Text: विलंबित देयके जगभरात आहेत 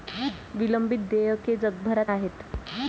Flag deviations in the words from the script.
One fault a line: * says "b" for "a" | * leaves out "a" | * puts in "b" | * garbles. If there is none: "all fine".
all fine